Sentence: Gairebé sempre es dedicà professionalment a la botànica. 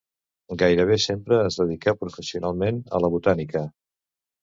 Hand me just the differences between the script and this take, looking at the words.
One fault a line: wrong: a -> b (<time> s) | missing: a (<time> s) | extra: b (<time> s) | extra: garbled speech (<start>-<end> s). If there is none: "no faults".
no faults